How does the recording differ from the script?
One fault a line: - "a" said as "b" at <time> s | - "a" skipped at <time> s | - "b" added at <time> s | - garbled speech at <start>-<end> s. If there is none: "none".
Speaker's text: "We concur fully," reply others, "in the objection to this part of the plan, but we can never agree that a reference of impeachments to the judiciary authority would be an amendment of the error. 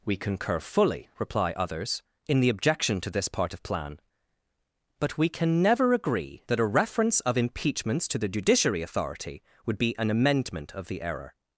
- "the" skipped at 3.6 s